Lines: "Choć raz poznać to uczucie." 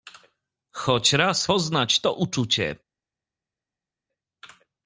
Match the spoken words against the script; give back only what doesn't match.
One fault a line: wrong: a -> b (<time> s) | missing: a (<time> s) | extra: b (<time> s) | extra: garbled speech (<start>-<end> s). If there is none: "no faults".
no faults